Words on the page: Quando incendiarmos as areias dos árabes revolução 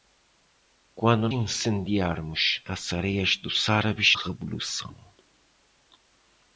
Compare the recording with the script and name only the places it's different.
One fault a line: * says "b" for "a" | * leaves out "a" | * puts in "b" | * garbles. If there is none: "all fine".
all fine